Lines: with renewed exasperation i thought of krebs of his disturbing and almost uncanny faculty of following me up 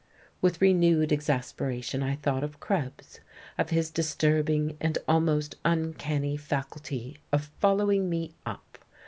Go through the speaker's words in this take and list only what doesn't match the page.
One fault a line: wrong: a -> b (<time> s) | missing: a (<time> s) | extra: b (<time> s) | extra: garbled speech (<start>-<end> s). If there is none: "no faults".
no faults